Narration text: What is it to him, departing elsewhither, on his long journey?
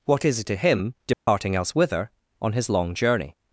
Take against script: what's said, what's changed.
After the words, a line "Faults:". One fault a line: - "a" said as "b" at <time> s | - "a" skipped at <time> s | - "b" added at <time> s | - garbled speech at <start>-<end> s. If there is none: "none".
What is it to him, departing elsewhither, on his long journey?
Faults:
none